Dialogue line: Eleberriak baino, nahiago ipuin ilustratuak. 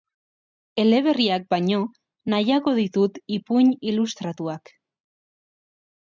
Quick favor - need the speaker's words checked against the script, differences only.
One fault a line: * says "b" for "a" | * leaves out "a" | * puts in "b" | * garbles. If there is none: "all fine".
* puts in "ditut"